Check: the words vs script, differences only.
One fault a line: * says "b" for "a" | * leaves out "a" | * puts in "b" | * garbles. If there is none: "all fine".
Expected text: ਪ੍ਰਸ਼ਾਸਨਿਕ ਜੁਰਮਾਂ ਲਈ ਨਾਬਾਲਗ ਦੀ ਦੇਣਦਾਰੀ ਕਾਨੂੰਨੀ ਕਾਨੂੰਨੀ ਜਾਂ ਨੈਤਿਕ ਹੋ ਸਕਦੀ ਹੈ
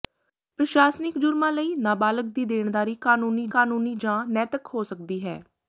all fine